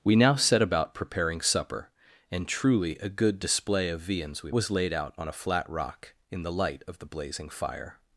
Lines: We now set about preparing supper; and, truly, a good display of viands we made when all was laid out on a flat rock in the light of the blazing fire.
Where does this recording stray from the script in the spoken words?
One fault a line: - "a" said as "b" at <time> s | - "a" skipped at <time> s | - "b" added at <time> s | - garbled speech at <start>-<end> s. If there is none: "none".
- "made when all" skipped at 4.5 s